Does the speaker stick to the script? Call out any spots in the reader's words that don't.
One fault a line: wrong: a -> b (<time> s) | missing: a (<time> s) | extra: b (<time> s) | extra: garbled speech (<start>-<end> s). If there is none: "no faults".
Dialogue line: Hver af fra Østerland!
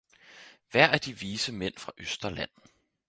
extra: de vise mænd (1.0 s)